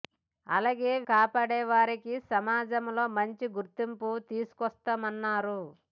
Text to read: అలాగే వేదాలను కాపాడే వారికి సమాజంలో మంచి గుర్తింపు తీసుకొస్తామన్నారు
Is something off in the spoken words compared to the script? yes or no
yes